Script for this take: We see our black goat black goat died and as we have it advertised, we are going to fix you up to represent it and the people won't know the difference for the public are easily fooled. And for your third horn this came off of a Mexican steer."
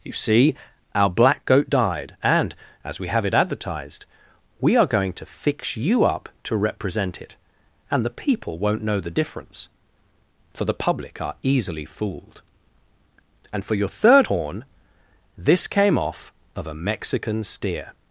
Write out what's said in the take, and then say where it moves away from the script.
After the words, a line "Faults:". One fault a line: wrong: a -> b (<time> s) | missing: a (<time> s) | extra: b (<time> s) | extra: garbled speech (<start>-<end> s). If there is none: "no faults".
You see our black goat died and as we have it advertised, we are going to fix you up to represent it and the people won't know the difference for the public are easily fooled. And for your third horn this came off of a Mexican steer."
Faults:
wrong: We -> You (0.0 s)
missing: black goat (1.7 s)